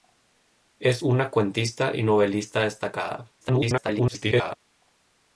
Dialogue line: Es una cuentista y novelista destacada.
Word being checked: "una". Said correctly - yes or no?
yes